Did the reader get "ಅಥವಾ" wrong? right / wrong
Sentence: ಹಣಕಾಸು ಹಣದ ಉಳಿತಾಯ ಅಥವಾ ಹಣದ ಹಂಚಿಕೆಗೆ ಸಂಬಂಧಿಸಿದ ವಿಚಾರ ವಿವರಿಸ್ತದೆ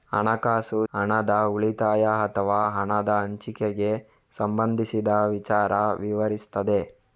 right